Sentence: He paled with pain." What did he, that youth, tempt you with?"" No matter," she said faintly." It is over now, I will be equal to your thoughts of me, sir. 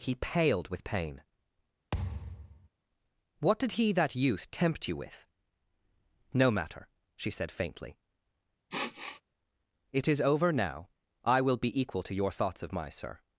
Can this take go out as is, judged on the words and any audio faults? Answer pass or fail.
fail